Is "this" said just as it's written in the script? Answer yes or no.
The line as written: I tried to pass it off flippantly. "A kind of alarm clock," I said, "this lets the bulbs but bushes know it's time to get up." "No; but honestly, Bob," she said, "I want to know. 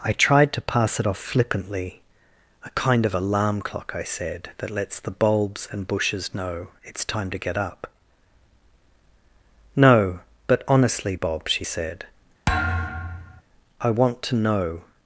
no